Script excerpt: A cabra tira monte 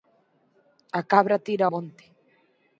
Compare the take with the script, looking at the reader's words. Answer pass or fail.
pass